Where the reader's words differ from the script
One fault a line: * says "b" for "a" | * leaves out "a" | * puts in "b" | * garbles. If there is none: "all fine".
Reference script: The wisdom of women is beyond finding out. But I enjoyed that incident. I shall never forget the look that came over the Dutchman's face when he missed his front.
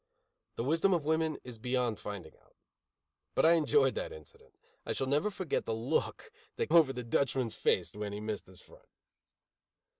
* leaves out "came"